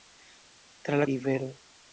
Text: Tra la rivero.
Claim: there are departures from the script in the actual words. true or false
false